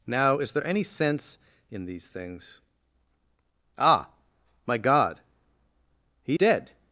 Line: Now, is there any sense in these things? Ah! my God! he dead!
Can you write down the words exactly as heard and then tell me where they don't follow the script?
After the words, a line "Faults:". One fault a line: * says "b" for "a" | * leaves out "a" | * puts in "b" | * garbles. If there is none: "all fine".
Now, is there any sense in these things? Ah! my God! he dead!
Faults:
all fine